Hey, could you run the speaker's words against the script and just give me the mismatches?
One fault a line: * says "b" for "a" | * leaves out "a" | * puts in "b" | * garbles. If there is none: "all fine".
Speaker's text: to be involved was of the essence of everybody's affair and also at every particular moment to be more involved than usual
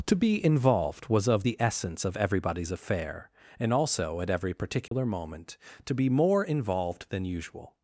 all fine